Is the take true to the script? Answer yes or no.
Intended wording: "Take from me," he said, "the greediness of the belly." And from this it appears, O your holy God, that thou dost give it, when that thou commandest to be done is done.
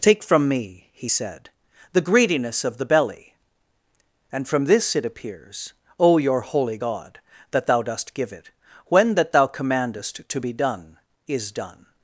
yes